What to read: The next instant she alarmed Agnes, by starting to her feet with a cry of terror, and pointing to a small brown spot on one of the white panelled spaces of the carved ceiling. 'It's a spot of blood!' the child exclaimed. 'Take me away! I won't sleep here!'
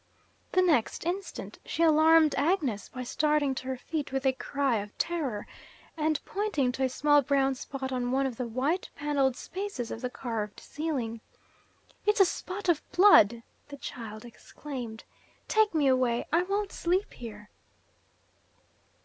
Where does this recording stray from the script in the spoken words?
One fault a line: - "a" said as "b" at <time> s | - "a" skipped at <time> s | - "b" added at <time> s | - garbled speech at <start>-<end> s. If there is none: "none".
none